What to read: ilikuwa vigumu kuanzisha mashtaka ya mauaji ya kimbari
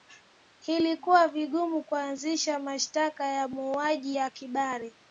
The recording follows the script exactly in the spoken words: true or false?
true